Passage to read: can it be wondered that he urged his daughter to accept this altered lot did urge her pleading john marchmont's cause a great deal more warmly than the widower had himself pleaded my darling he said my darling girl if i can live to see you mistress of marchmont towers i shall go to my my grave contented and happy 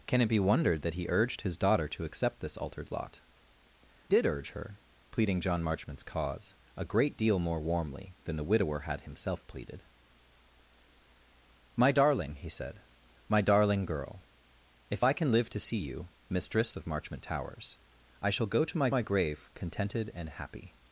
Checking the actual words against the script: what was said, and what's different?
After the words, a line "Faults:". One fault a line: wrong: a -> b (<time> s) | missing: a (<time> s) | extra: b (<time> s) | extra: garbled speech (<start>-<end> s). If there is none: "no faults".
can it be wondered that he urged his daughter to accept this altered lot did urge her pleading john marchmont's cause a great deal more warmly than the widower had himself pleaded my darling he said my darling girl if i can live to see you mistress of marchmont towers i shall go to my my grave contented and happy
Faults:
no faults